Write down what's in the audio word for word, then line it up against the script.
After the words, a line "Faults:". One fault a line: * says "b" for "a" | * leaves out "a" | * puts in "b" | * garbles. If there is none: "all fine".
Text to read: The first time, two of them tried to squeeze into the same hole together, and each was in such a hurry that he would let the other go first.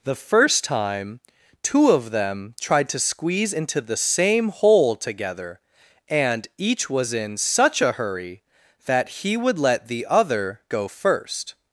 The first time, two of them tried to squeeze into the same hole together, and each was in such a hurry that he would let the other go first.
Faults:
all fine